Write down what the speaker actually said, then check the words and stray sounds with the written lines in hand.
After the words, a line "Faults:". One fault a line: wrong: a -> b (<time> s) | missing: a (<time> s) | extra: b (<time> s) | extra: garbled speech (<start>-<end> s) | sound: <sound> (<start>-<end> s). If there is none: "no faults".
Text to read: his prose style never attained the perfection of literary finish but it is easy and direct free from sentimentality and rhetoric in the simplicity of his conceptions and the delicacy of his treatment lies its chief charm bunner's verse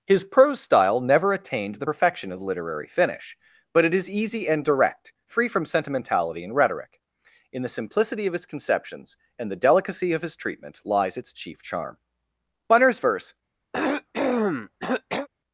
his prose style never attained the perfection of literary finish but it is easy and direct free from sentimentality and rhetoric in the simplicity of his conceptions and the delicacy of his treatment lies its chief charm bunner's verse
Faults:
sound: cough (13.7-15.3 s)